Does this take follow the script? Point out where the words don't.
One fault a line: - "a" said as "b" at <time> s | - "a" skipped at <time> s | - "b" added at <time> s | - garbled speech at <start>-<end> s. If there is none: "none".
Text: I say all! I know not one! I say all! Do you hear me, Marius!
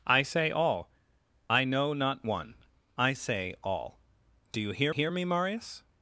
- "hear" added at 4.9 s